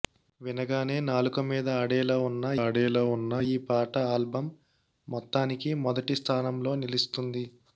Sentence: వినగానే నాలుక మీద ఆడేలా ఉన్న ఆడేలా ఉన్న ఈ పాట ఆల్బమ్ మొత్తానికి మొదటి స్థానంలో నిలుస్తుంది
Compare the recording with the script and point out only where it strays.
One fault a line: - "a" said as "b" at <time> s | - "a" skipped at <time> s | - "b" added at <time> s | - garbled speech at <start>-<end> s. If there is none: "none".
none